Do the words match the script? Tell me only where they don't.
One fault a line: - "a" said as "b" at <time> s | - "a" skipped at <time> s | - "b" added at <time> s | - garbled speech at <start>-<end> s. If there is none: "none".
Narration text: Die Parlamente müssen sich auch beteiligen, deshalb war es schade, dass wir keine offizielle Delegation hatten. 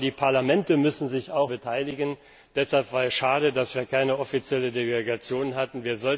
none